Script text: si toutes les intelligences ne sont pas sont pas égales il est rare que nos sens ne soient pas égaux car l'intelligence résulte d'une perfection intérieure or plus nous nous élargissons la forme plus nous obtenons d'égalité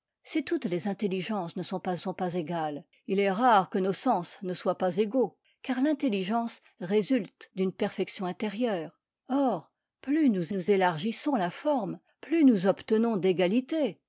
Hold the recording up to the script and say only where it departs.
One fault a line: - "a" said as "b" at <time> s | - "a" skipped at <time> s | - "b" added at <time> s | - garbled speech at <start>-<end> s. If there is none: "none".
none